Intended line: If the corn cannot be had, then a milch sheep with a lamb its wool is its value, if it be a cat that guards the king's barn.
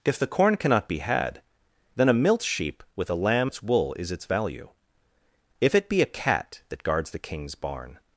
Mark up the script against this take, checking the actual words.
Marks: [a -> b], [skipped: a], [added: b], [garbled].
If the corn cannot be had, then a milch sheep with a lamb its wool is its value, if it be a cat that guards the king's barn.